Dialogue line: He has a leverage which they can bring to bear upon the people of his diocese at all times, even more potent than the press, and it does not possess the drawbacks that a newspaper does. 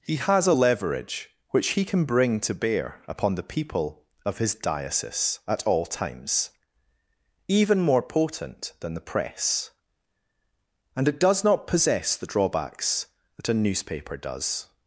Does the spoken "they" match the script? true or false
false